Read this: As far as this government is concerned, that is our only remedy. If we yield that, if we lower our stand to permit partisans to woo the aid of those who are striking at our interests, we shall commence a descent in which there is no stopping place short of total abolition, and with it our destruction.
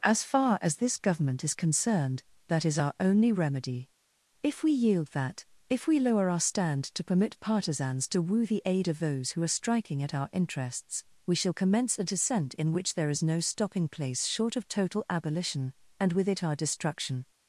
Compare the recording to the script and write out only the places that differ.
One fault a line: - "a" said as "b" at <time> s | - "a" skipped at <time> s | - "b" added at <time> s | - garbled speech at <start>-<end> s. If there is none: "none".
none